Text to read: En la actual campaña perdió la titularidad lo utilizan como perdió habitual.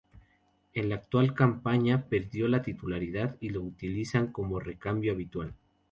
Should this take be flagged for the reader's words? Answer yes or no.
yes